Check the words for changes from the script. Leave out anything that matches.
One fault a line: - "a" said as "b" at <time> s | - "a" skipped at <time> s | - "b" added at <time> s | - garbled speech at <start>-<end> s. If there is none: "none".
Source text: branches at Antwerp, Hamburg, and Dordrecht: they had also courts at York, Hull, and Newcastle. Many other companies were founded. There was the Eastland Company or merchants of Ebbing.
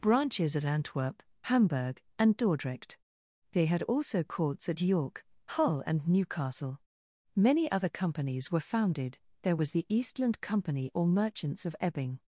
none